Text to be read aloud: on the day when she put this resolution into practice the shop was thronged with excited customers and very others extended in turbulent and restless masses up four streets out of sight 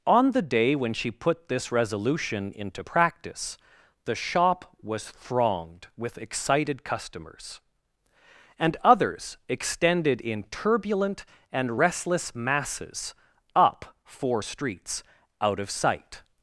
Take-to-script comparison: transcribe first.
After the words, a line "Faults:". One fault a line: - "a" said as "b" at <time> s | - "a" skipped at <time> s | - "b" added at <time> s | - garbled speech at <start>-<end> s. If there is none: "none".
on the day when she put this resolution into practice the shop was thronged with excited customers and others extended in turbulent and restless masses up four streets out of sight
Faults:
- "very" skipped at 8.7 s